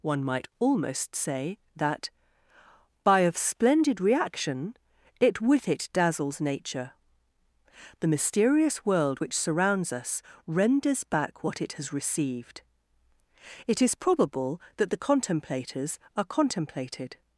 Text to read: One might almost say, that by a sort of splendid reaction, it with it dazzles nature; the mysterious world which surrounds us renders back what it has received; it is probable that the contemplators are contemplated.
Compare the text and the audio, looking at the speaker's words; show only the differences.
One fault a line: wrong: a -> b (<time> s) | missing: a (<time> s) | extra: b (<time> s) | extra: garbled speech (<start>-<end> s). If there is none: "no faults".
missing: a sort (3.2 s)